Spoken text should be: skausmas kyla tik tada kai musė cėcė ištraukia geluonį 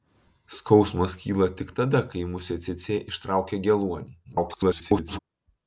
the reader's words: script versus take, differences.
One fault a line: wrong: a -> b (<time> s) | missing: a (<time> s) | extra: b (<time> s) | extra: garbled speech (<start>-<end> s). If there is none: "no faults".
extra: garbled speech (4.2-5.2 s)